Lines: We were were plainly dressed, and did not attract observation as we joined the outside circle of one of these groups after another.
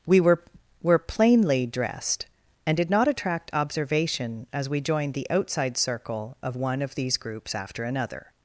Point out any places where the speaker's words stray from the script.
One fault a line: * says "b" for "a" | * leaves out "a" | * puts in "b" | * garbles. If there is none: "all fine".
all fine